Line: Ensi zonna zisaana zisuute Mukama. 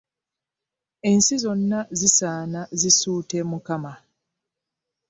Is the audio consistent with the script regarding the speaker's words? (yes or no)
yes